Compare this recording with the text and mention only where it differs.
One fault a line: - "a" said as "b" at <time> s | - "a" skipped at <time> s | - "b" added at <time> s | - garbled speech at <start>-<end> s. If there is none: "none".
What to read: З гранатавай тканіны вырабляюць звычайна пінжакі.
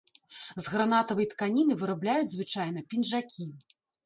none